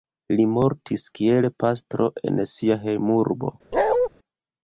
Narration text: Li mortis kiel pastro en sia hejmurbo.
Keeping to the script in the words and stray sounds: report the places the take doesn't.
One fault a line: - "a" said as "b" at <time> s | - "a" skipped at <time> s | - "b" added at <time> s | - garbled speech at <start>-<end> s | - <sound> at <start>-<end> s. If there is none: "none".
- bark at 3.7-4.1 s